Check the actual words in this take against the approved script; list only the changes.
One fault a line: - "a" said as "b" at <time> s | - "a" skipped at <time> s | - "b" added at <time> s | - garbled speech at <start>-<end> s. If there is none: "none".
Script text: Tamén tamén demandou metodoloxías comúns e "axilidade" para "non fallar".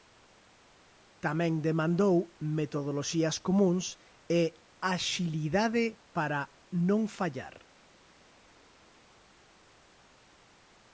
- "tamén" skipped at 1.5 s